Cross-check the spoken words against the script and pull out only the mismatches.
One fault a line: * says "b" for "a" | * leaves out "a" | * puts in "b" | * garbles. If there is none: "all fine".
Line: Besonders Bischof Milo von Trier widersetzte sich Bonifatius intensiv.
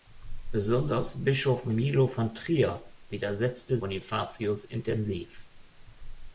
* leaves out "sich"